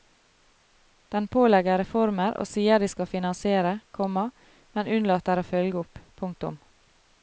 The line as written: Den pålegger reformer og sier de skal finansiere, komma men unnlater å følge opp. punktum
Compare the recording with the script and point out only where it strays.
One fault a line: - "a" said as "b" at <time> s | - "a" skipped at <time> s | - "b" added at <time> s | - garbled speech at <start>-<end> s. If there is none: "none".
none